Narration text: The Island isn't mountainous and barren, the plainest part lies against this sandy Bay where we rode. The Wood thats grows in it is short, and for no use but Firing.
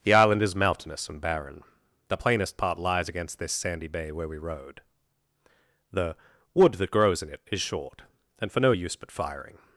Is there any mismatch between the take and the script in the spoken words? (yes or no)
yes